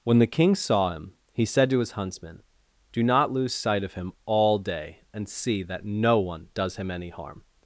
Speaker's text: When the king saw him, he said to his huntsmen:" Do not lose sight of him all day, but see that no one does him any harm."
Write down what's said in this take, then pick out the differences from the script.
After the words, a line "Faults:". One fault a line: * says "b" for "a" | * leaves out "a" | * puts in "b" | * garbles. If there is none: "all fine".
When the king saw him, he said to his huntsmen:" Do not lose sight of him all day, and see that no one does him any harm."
Faults:
* says "and" for "but"